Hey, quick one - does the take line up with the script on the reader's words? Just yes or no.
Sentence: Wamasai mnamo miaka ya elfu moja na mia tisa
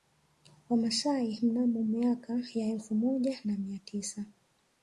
yes